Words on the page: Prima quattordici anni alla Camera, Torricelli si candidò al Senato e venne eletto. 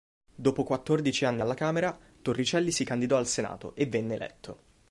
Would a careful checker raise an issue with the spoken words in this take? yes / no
yes